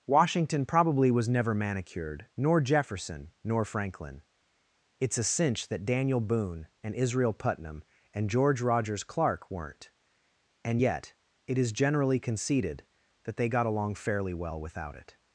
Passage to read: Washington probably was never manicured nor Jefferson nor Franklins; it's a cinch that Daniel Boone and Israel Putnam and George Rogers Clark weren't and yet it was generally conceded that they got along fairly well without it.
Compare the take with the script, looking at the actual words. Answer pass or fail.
fail